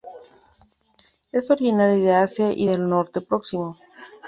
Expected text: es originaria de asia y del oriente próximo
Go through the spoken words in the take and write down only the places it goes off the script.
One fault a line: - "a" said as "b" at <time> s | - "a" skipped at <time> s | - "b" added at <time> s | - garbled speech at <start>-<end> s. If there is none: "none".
none